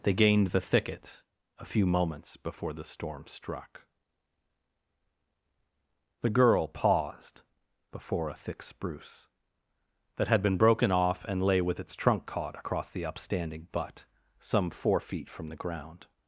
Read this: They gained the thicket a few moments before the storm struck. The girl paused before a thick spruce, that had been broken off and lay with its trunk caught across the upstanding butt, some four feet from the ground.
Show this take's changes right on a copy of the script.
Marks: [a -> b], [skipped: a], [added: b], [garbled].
They gained the thicket a few moments before the storm struck. The girl paused before a thick spruce, that had been broken off and lay with its trunk caught across the upstanding butt, some four feet from the ground.